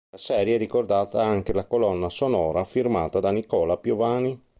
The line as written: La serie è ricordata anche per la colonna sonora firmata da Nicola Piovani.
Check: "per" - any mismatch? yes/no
yes